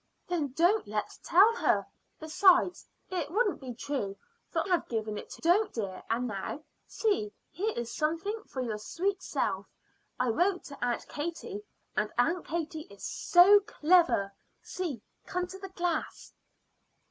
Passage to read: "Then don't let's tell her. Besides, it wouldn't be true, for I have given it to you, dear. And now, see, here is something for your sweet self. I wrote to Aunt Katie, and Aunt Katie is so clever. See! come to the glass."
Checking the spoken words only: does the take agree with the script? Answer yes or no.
no